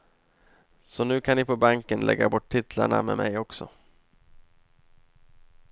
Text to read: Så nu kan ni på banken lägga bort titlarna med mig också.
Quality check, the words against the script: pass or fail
pass